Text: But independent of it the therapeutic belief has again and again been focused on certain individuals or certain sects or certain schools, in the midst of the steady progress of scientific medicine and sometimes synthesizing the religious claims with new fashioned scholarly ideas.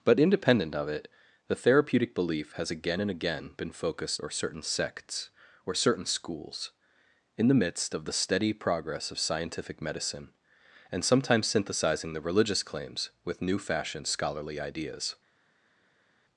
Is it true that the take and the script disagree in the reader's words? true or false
true